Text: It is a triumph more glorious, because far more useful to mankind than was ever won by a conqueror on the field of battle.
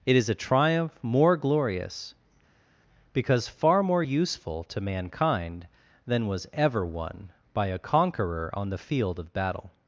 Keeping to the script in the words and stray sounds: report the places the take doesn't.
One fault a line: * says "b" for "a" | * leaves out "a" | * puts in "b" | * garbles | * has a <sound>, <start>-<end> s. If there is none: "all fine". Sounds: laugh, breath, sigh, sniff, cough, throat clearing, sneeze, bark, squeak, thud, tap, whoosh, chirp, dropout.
all fine